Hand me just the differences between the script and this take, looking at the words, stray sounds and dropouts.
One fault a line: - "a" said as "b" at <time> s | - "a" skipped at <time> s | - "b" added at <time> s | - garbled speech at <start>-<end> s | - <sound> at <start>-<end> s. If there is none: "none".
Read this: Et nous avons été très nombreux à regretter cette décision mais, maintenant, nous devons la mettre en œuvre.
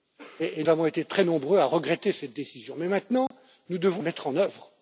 - "nous" skipped at 0.6 s
- dropout at 3.3-3.3 s
- "la" skipped at 4.0 s